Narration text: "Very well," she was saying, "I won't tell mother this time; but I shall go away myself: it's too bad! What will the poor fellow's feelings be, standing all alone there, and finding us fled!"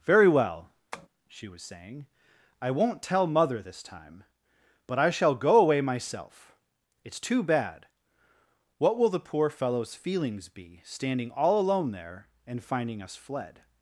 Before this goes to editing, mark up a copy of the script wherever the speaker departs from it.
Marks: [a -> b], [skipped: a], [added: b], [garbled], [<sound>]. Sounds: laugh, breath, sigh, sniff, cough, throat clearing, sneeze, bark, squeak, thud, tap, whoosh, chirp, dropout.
"Very well," [tap] she was saying, "I won't tell mother this time; but I shall go away myself: it's too bad! What will the poor fellow's feelings be, standing all alone there, and finding us fled!"